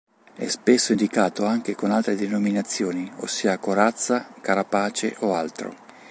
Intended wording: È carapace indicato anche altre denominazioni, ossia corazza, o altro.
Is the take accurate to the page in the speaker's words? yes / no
no